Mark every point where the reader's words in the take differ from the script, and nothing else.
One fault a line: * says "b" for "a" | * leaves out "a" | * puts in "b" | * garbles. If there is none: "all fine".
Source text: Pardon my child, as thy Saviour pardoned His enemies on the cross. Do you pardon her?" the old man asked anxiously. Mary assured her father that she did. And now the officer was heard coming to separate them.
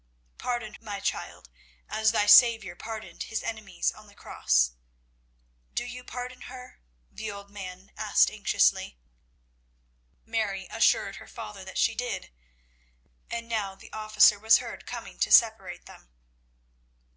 all fine